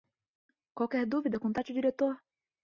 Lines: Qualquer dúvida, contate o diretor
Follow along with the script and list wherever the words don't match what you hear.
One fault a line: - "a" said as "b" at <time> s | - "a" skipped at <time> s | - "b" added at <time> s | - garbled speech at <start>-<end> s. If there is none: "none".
none